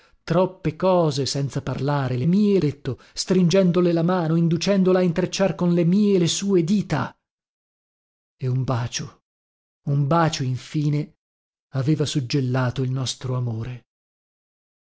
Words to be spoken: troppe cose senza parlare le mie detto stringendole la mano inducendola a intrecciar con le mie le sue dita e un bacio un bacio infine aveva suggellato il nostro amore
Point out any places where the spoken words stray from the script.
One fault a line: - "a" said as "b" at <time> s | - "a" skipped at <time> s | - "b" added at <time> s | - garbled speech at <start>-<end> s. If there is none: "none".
none